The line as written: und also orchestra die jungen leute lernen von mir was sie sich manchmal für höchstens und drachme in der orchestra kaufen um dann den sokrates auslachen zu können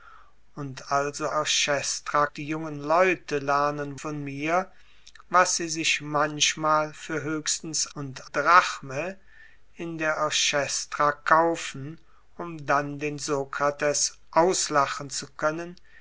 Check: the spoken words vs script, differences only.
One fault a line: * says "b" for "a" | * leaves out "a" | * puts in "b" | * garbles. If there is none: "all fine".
all fine